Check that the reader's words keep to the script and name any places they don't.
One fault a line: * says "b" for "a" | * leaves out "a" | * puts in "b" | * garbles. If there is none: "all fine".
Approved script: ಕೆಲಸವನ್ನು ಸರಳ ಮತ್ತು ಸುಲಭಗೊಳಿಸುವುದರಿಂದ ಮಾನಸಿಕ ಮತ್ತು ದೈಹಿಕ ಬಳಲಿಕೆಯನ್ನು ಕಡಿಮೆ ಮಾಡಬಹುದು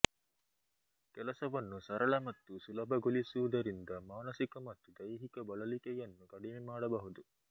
all fine